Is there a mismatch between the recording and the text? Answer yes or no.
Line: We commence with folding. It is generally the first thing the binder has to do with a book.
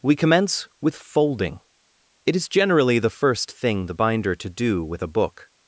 yes